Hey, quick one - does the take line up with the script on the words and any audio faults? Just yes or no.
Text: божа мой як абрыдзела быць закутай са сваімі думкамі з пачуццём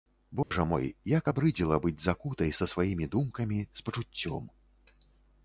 no